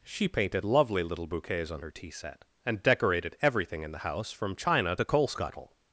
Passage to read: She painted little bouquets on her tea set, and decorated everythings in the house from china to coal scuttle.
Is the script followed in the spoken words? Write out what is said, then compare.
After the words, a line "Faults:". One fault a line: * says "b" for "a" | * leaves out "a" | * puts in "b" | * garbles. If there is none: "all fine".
She painted lovely little bouquets on her tea set, and decorated everything in the house from china to coal scuttle.
Faults:
* puts in "lovely"
* says "everything" for "everythings"